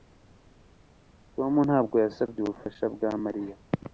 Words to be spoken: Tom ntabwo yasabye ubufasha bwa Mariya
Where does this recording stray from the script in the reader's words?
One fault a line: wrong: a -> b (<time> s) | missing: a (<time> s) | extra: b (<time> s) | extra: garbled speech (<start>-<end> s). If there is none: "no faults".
no faults